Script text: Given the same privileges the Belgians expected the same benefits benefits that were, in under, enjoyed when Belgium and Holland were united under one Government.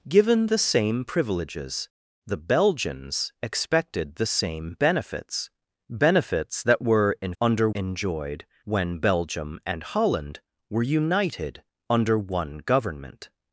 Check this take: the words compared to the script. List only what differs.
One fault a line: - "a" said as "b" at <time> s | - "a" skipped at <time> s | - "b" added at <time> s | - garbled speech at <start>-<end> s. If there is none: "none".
none